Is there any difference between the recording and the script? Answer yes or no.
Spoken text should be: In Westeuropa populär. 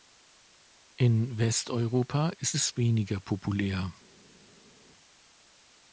yes